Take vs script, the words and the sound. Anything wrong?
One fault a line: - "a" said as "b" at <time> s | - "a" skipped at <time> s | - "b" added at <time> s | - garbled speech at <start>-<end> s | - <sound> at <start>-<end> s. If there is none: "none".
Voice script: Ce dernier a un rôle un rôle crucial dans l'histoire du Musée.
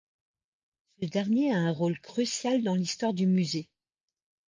- "un rôle" skipped at 2.0 s